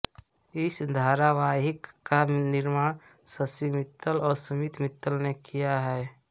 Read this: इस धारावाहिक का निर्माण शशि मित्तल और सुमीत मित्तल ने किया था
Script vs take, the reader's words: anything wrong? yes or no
yes